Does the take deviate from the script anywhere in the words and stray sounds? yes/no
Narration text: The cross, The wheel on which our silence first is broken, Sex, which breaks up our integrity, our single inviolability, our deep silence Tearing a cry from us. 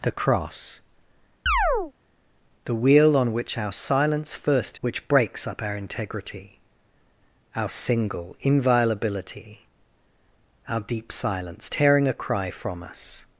yes